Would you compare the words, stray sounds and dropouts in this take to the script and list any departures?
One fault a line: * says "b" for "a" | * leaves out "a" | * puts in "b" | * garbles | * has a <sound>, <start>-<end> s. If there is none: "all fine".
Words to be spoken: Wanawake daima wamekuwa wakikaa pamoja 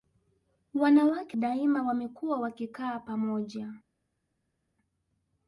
all fine